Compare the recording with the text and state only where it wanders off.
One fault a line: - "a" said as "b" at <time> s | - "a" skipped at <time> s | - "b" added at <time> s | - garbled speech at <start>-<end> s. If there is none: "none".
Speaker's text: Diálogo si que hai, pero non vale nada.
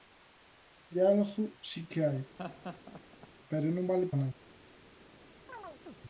none